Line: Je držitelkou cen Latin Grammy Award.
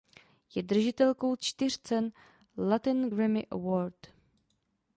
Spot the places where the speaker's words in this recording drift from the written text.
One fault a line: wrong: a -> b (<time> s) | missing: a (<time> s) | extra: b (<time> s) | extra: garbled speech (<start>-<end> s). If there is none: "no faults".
extra: čtyř (1.3 s)